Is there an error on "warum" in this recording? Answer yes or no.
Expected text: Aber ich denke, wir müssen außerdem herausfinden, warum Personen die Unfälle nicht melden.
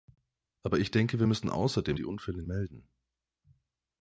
yes